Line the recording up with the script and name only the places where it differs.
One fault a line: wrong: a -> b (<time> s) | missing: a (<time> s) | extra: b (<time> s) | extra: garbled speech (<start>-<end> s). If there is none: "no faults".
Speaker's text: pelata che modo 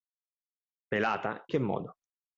no faults